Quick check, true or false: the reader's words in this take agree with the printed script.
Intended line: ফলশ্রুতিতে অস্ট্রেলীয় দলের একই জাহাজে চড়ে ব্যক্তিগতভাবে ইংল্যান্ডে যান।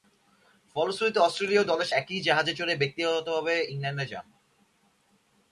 true